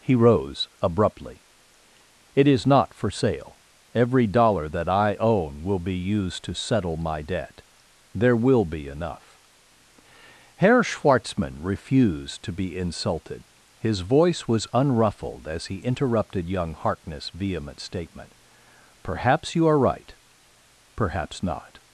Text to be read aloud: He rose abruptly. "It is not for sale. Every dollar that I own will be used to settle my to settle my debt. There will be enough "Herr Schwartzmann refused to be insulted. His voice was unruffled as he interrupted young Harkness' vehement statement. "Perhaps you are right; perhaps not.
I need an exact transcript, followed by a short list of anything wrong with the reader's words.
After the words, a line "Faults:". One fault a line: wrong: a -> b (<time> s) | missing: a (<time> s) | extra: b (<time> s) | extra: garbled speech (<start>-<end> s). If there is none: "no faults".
He rose abruptly. "It is not for sale. Every dollar that I own will be used to settle my debt. There will be enough "Herr Schwartzmann refused to be insulted. His voice was unruffled as he interrupted young Harkness' vehement statement. "Perhaps you are right; perhaps not.
Faults:
missing: to settle my (7.2 s)